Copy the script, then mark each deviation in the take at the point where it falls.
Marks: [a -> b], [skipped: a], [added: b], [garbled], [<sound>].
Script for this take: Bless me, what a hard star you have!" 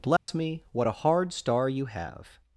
Bless [dropout] me, what a hard star you have!"